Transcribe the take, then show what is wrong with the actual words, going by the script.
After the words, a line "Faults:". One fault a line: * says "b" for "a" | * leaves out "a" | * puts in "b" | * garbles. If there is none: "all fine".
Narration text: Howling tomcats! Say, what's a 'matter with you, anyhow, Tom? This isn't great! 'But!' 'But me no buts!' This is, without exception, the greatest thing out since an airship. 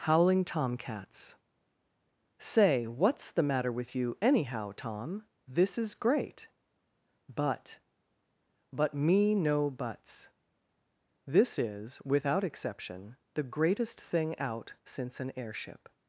Howling tomcats! Say, what's the 'matter with you, anyhow, Tom? This is great! 'But!' 'But me no buts!' This is, without exception, the greatest thing out since an airship.
Faults:
* says "the" for "a"
* says "is" for "isn't"